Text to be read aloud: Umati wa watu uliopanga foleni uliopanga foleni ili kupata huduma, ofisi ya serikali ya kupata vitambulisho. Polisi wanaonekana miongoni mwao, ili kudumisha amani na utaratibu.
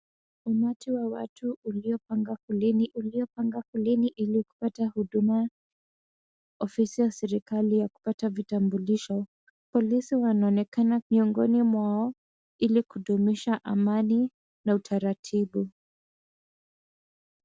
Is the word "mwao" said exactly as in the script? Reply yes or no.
yes